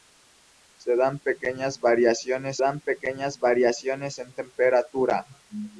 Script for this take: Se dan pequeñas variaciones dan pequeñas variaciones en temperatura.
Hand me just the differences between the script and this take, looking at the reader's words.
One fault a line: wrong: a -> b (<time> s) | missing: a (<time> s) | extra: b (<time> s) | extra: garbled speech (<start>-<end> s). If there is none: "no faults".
no faults